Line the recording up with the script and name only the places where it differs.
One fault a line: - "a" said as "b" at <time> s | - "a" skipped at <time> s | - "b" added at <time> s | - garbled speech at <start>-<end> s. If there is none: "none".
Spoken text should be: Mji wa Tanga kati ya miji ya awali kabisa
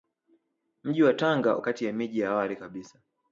none